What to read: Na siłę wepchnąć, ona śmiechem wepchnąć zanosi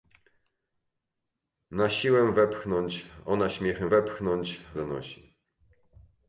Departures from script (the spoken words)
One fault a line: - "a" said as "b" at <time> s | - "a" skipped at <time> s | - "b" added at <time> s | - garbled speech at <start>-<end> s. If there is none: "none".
none